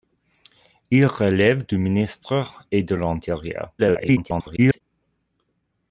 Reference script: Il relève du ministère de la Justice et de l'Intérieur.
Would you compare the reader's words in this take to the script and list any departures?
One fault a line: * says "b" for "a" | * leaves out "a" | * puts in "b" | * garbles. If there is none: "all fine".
* leaves out "de la Justice"
* garbles